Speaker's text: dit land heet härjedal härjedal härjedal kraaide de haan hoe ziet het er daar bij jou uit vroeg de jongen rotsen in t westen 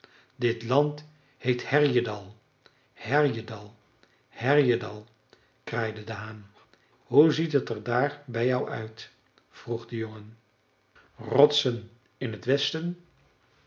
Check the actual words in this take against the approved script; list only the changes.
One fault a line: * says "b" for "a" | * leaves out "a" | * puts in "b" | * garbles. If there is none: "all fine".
all fine